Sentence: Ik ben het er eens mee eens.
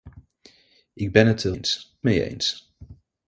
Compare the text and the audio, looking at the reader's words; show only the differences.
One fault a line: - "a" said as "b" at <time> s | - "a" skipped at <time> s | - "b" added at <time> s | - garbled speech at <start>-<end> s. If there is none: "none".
none